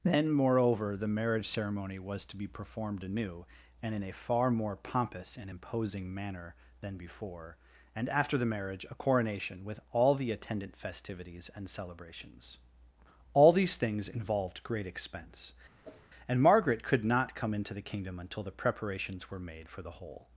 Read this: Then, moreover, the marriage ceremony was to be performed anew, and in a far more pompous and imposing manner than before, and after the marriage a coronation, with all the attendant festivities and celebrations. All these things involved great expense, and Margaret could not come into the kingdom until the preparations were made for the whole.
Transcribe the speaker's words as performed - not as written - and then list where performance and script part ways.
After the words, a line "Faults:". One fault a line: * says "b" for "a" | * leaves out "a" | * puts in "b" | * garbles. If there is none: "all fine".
Then, moreover, the marriage ceremony was to be performed anew, and in a far more pompous and imposing manner than before, and after the marriage a coronation, with all the attendant festivities and celebrations. All these things involved great expense, and Margaret could not come into the kingdom until the preparations were made for the whole.
Faults:
all fine